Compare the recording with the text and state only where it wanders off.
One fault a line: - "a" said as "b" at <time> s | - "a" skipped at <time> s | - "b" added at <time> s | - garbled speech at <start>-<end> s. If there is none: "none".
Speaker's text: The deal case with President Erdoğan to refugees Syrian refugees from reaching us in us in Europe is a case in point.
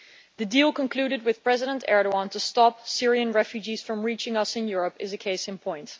- "case" said as "concluded" at 0.7 s
- "refugees" said as "stop" at 2.4 s
- "us in" skipped at 4.7 s